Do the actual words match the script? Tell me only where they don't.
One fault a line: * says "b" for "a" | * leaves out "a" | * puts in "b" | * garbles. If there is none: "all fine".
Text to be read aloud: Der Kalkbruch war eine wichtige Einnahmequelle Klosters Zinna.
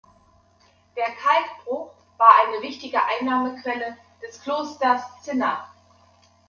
* puts in "des"